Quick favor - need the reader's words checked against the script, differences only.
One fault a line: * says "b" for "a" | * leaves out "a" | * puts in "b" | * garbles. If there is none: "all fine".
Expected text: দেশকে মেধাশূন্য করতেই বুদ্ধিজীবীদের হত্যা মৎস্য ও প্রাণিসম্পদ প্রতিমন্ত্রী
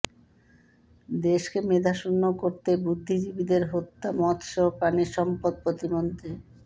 all fine